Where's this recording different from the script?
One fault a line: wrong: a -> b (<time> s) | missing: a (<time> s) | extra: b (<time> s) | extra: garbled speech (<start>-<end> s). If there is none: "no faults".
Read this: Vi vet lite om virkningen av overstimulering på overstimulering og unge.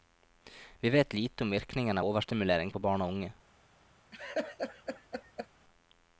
wrong: overstimulering -> barn (2.8 s)